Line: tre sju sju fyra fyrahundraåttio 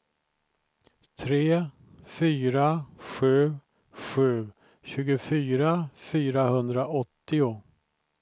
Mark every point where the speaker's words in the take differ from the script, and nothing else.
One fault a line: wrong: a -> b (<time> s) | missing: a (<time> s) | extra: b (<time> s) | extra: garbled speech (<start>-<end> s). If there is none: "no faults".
extra: fyra (2.1 s)
wrong: fyra -> tjugofyra (4.8 s)